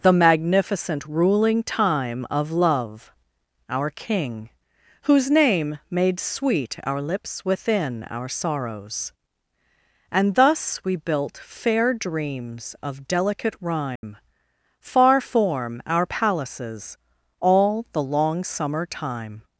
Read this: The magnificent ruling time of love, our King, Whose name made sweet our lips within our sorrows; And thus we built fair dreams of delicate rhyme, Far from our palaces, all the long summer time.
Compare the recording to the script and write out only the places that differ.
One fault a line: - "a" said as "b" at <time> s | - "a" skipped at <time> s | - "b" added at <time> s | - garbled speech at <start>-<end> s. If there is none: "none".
- "from" said as "form" at 15.2 s